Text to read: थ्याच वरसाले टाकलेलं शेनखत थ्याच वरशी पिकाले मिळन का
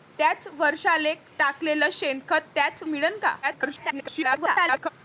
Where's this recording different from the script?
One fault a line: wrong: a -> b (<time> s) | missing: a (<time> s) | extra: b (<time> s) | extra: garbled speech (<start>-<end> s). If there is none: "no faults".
missing: वरशी पिकाले (2.8 s)
extra: garbled speech (3.4-4.9 s)